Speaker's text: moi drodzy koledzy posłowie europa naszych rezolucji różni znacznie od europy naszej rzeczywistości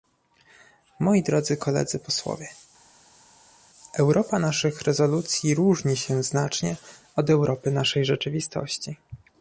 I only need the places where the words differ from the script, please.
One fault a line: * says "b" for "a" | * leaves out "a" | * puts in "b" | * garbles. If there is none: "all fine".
* puts in "się"